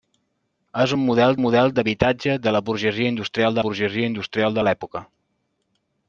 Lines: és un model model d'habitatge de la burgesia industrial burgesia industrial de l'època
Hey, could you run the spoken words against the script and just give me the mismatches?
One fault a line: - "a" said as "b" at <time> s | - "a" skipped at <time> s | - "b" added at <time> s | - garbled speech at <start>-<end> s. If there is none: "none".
none